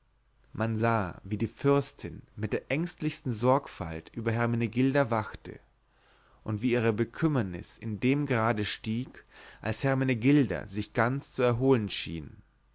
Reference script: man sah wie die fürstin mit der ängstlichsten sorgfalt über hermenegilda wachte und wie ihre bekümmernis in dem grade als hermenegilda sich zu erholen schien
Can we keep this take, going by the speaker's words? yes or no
no